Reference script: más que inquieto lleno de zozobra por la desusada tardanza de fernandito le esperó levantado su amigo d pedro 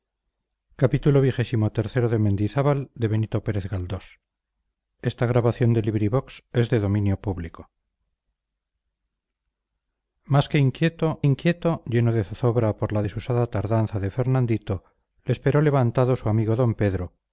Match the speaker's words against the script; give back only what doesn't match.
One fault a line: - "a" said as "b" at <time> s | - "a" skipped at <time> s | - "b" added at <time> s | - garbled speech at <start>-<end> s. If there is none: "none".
- "inquieto" added at 11.2 s